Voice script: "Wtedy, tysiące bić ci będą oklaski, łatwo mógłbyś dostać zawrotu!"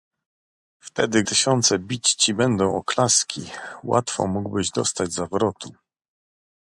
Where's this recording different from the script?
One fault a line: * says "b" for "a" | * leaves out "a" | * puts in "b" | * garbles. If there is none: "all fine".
all fine